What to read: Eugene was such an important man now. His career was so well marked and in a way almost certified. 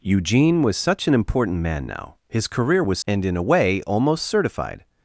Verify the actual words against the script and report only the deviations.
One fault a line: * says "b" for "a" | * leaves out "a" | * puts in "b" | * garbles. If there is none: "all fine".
* leaves out "so well marked"